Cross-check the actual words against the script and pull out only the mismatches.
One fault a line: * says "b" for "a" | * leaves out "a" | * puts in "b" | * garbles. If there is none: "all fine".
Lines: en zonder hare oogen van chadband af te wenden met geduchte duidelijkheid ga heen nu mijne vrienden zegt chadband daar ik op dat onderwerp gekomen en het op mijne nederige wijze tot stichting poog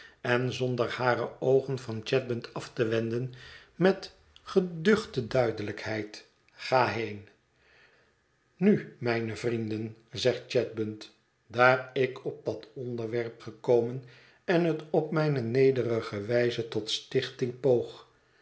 all fine